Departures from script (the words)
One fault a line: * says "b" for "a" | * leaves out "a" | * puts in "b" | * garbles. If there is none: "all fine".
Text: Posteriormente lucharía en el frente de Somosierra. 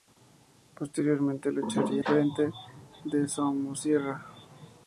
* leaves out "en"